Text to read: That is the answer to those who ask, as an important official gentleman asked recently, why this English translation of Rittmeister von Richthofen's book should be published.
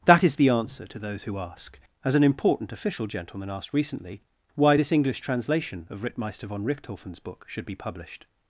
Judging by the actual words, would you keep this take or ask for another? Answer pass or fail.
pass